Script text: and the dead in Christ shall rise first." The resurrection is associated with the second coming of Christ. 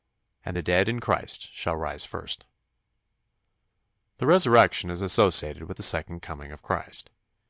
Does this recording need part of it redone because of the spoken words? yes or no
no